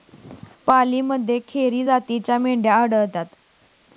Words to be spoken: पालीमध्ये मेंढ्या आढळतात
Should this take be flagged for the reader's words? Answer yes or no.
yes